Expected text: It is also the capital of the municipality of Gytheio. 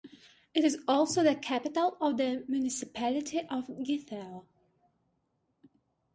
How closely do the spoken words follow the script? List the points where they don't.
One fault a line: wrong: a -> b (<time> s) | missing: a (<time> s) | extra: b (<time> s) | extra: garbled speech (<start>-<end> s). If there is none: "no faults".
no faults